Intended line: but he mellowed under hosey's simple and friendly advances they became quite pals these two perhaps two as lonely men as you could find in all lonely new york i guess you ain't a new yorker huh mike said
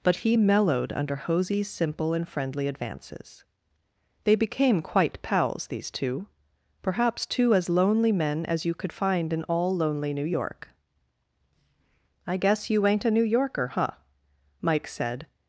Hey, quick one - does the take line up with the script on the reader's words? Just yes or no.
yes